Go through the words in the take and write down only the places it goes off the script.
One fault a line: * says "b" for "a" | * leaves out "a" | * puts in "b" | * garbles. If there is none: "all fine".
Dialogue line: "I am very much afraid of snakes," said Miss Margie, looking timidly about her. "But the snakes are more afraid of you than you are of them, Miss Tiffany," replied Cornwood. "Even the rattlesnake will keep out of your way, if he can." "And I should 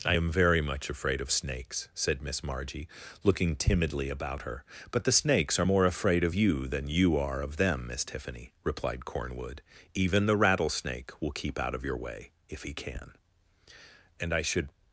all fine